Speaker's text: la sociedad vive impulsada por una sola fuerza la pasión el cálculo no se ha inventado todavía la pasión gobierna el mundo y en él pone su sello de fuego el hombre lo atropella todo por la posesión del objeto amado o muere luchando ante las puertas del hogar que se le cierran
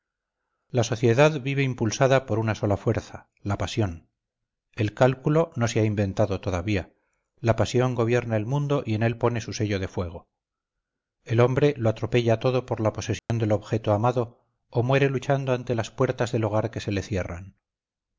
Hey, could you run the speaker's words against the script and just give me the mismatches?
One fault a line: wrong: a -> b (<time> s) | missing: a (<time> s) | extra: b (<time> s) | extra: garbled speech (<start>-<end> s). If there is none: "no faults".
no faults